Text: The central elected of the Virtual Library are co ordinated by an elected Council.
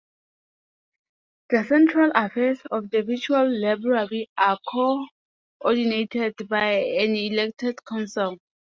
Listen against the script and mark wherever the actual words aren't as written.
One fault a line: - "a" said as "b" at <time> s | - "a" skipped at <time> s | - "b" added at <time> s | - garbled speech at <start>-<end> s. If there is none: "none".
- "elected" said as "affairs" at 2.1 s